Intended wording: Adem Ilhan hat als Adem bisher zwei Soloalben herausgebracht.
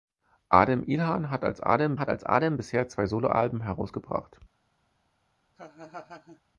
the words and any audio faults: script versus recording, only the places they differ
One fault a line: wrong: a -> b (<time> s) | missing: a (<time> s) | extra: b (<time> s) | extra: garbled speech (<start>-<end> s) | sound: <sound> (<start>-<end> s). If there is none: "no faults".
extra: hat als Adem (2.0 s)
sound: laugh (5.5-6.4 s)